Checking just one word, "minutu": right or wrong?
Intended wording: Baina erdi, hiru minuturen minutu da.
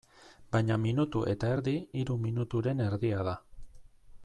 wrong